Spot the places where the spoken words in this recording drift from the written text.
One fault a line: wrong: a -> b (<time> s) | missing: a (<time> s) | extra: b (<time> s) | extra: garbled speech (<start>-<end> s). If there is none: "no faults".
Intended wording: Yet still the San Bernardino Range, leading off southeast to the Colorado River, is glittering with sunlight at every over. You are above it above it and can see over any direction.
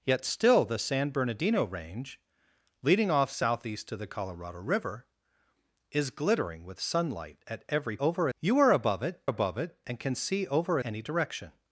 no faults